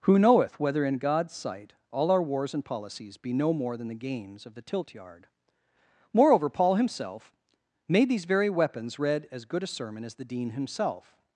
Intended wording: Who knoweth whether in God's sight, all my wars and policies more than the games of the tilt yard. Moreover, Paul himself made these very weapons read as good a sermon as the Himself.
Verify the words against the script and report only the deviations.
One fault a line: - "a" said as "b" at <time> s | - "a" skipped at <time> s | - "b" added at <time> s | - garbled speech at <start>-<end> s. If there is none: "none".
- "my" said as "our" at 2.1 s
- "be no" added at 3.2 s
- "Dean" added at 10.2 s